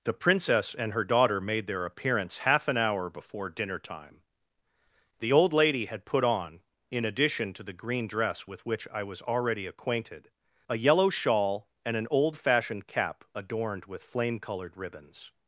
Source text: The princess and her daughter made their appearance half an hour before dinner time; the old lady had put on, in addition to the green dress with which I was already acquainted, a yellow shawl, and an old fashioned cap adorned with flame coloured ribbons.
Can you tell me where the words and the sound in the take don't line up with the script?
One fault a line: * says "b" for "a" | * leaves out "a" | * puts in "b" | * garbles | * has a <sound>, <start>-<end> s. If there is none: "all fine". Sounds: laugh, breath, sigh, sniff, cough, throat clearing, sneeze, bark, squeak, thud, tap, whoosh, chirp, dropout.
all fine